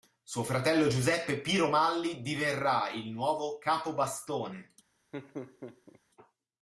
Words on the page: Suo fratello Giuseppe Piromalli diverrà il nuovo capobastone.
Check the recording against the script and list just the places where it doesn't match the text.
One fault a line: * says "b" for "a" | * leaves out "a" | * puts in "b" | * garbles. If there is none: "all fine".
all fine